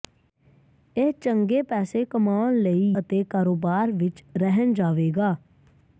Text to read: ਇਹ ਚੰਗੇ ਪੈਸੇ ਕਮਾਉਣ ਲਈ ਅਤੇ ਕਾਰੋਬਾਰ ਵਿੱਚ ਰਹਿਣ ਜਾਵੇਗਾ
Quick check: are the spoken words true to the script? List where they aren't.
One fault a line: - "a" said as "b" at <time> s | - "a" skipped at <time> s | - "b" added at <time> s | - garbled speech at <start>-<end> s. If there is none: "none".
none